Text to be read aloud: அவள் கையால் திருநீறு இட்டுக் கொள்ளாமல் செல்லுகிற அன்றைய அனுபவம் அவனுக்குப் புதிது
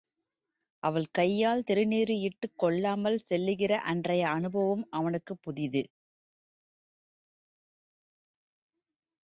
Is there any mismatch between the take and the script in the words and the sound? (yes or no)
no